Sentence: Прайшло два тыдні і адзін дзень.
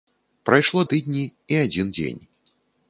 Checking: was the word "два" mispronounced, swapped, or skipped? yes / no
yes